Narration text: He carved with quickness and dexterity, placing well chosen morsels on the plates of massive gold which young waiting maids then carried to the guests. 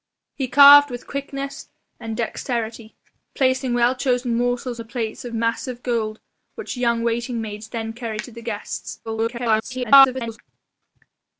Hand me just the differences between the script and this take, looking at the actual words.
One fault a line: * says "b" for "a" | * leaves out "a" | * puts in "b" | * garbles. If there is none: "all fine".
* leaves out "on"
* garbles